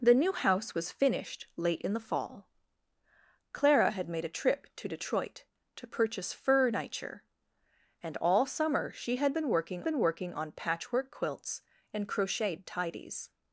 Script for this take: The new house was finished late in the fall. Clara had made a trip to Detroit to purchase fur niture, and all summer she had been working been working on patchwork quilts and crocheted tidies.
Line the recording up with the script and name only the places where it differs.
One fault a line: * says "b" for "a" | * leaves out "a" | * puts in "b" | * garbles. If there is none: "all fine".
all fine